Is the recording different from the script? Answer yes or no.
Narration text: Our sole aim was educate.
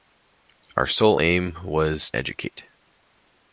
no